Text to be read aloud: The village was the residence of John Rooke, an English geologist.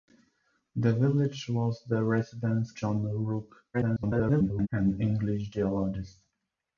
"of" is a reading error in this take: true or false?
true